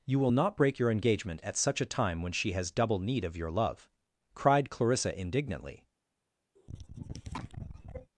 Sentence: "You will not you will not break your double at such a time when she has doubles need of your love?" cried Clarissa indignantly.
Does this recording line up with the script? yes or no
no